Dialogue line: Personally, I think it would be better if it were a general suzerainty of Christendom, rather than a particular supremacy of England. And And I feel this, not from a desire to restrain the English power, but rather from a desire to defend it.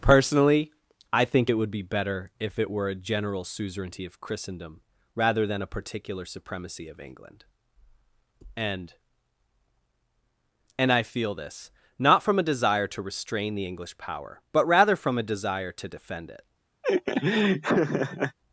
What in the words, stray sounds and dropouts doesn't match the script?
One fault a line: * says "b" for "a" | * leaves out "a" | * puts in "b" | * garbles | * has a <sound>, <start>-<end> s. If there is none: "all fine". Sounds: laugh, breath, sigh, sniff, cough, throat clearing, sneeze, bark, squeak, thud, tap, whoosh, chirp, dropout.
* has a laugh, 16.8-18.4 s